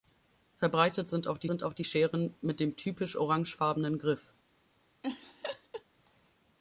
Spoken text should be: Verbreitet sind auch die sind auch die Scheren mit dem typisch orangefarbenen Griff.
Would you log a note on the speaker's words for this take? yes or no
no